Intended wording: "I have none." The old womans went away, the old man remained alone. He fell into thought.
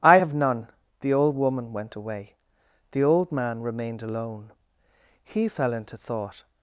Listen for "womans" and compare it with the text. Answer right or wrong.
wrong